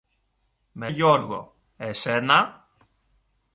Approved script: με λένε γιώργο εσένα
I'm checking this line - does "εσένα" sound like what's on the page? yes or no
yes